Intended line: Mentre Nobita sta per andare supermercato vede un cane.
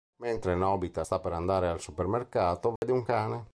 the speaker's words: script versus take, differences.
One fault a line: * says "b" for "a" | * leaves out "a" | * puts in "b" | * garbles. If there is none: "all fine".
* puts in "al"